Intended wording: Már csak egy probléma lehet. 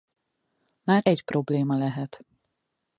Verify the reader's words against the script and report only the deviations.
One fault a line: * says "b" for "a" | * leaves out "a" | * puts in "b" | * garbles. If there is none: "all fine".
* leaves out "csak"